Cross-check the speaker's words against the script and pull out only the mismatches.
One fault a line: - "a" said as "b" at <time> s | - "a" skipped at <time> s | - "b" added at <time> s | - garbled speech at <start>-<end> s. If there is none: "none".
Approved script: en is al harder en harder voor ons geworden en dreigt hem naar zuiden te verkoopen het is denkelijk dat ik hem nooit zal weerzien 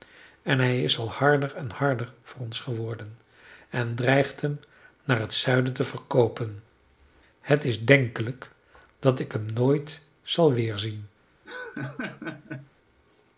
- "hij" added at 0.6 s
- "het" added at 5.2 s